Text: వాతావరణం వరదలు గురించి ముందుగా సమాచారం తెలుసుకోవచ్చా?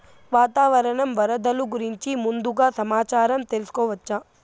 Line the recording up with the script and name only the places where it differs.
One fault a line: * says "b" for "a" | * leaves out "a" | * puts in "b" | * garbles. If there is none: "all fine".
all fine